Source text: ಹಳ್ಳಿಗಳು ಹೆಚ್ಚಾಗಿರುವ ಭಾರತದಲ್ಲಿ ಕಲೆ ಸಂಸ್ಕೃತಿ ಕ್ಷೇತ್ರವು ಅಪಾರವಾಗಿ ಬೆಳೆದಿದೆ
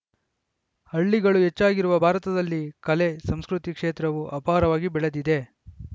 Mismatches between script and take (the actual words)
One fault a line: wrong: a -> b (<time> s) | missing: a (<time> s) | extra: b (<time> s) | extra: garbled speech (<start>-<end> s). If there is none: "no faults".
no faults